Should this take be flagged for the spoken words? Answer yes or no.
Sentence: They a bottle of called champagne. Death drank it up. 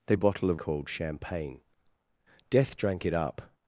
no